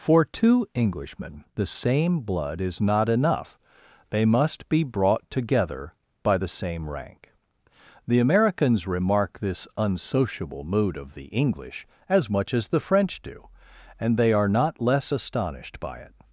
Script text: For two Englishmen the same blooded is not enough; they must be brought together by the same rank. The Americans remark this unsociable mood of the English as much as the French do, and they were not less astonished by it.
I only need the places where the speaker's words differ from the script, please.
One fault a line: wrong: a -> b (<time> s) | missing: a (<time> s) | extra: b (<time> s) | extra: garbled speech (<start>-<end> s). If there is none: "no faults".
wrong: blooded -> blood (2.2 s)
wrong: were -> are (14.3 s)